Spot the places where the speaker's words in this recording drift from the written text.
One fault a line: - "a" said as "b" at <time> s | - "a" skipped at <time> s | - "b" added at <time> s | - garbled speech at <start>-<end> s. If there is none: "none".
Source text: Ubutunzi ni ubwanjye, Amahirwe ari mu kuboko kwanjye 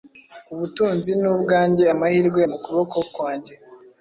- "ari" skipped at 2.4 s